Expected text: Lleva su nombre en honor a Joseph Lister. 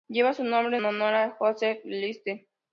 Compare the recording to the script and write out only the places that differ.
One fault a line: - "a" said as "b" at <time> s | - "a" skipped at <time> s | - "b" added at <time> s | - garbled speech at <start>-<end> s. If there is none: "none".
- "en" skipped at 0.8 s